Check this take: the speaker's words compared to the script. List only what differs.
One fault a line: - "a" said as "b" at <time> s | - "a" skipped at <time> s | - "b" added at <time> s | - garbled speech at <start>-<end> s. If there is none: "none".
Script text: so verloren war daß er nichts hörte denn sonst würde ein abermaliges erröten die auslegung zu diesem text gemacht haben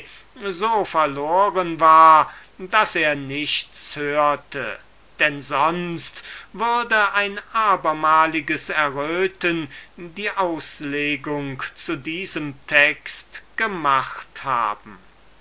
none